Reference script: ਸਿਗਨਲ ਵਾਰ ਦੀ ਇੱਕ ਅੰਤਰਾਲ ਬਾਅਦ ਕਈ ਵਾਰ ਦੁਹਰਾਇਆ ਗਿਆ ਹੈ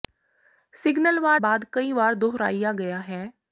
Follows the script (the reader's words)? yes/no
no